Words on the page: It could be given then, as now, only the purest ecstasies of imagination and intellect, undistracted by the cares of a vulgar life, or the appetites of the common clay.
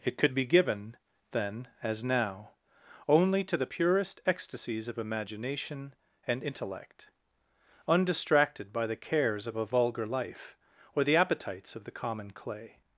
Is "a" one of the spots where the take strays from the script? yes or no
no